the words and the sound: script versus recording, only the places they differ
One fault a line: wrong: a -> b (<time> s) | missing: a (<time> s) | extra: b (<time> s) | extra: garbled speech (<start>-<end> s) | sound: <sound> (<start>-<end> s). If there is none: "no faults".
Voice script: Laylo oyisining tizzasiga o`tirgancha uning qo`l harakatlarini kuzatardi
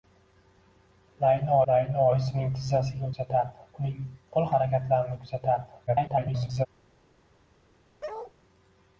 extra: laylo (1.7 s)
wrong: o`tirgancha -> kuzatardi (3.1 s)
extra: garbled speech (5.9-6.7 s)
sound: bark (8.0-8.3 s)